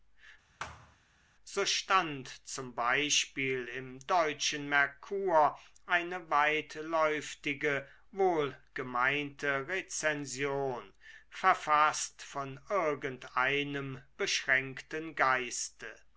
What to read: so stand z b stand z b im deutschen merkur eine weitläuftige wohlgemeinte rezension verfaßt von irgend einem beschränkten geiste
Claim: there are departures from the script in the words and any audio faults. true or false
true